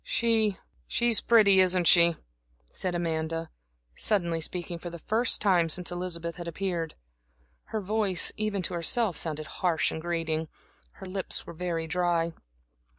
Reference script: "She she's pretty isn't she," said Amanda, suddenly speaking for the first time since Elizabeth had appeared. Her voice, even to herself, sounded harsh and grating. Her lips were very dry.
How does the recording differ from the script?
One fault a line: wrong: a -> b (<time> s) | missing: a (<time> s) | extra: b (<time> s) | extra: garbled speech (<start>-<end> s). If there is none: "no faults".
no faults